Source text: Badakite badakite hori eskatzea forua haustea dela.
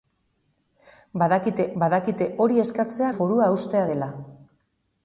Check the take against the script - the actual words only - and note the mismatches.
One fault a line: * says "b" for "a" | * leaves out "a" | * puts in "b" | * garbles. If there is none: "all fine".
all fine